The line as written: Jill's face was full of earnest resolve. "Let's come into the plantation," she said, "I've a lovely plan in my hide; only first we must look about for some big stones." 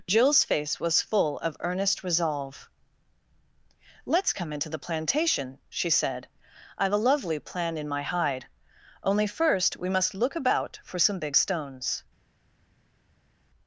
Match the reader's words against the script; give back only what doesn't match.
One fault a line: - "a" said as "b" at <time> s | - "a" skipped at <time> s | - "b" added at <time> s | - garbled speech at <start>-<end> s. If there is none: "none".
none